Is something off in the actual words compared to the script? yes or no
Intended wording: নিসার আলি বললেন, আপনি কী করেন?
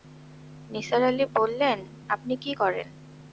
no